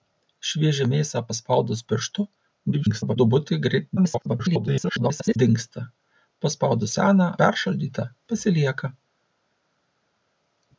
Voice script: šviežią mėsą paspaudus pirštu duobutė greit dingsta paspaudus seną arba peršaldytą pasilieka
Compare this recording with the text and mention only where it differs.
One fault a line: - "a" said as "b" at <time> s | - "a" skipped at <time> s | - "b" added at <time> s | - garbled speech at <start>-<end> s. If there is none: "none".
- garbled speech at 2.7-3.2 s
- garbled speech at 4.0-5.4 s
- "arba" skipped at 7.3 s